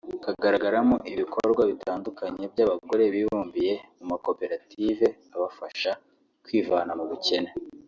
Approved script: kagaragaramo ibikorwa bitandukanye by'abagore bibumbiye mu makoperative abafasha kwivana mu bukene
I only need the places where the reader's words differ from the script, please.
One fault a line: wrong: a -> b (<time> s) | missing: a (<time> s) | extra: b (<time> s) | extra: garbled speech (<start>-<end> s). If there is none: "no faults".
no faults